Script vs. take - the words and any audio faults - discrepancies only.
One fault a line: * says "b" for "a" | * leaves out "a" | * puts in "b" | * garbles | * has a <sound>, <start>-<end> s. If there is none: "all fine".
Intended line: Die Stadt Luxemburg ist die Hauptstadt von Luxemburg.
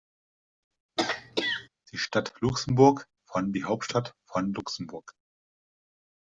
* has a throat clearing, 1.0-1.7 s
* says "von" for "ist"